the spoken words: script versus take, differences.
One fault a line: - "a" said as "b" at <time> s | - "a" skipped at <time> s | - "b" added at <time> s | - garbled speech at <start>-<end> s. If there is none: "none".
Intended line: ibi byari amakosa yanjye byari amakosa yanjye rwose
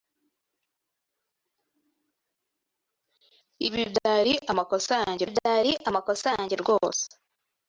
none